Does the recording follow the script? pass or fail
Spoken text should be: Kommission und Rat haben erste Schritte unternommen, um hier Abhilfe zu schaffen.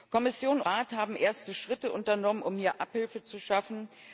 fail